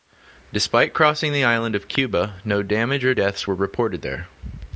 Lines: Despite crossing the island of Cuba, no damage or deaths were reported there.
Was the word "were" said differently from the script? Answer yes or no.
no